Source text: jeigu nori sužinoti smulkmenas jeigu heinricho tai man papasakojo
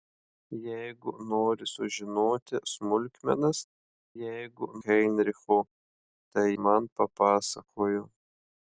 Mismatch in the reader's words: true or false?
false